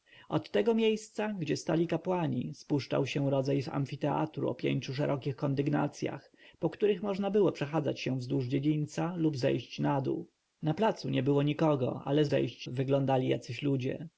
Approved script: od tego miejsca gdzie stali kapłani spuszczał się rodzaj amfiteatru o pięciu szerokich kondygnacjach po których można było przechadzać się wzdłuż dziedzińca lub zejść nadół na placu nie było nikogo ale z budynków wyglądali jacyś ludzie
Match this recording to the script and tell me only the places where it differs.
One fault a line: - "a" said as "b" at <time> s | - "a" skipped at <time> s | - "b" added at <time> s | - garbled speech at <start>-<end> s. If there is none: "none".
- "budynków" said as "zejść" at 12.3 s